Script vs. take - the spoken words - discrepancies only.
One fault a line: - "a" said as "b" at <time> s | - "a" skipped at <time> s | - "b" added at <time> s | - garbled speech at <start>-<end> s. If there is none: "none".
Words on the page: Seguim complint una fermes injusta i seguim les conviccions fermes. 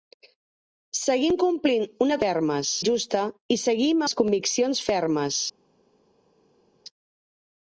none